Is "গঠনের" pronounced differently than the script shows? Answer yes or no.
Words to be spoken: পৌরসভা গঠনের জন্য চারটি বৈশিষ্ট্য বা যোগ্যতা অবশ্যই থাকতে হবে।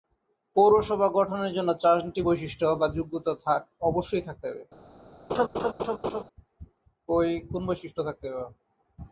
no